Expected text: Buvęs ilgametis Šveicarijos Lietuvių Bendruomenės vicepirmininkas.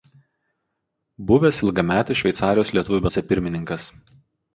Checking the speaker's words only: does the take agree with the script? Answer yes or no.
no